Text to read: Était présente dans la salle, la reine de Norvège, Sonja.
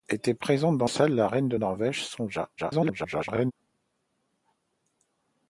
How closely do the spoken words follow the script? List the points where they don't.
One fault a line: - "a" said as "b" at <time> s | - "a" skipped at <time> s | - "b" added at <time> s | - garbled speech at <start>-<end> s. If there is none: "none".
- "la" skipped at 0.9 s
- garbled speech at 2.6-3.5 s